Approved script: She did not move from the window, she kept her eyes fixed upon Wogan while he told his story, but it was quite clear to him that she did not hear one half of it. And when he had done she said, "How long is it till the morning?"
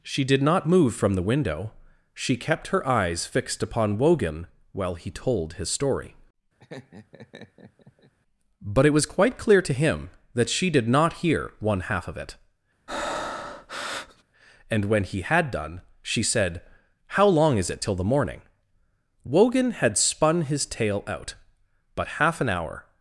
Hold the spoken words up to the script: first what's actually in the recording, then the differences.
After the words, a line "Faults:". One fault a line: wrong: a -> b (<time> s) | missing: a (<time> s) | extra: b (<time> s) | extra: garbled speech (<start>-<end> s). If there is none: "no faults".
She did not move from the window, she kept her eyes fixed upon Wogan while he told his story, but it was quite clear to him that she did not hear one half of it. And when he had done she said, "How long is it till the morning?" Wogan had spun his tale out, but half an hour
Faults:
extra: Wogan had spun his tale out but half an hour (19.2 s)